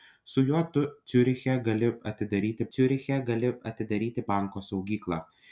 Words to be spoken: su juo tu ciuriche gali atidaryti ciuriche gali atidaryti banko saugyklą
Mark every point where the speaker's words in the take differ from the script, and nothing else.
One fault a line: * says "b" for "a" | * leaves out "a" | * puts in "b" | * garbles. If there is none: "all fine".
all fine